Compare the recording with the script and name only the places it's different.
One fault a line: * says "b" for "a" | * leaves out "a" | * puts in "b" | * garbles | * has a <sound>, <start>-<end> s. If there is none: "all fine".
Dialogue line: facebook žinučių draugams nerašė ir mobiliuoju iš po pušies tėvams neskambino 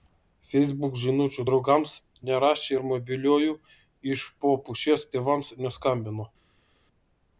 all fine